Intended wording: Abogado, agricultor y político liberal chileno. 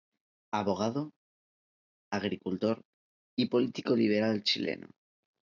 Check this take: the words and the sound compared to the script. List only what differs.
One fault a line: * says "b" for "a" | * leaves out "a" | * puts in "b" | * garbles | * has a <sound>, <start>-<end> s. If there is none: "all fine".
all fine